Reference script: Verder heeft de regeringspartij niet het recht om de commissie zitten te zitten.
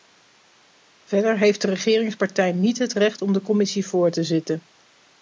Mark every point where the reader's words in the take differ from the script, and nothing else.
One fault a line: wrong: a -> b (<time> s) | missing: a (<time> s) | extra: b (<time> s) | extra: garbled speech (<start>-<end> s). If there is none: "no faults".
wrong: zitten -> voor (3.9 s)